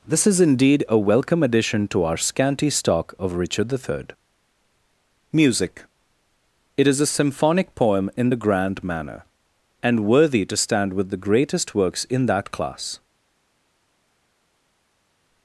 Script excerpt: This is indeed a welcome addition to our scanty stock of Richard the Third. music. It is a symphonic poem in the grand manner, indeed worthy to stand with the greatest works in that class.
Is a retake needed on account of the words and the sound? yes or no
yes